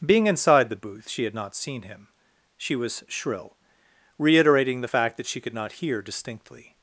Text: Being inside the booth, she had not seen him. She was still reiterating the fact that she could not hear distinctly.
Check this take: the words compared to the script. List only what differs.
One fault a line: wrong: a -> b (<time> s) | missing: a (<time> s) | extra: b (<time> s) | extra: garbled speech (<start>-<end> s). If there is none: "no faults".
wrong: still -> shrill (3.1 s)